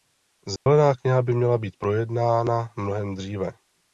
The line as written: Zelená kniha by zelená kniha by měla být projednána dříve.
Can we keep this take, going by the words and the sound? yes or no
no